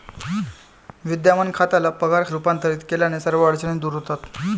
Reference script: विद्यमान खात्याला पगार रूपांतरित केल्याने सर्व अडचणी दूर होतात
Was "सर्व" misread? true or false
false